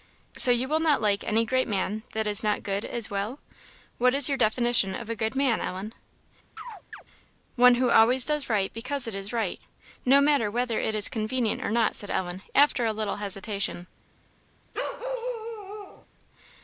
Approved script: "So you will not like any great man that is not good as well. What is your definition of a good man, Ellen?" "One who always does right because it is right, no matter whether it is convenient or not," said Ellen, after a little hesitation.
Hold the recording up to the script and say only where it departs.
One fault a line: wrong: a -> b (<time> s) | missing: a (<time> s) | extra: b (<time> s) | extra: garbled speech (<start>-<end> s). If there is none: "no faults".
no faults